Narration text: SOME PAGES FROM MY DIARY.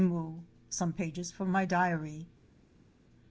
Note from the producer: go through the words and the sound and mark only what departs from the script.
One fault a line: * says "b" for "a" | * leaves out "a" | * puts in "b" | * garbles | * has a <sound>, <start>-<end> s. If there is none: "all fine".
all fine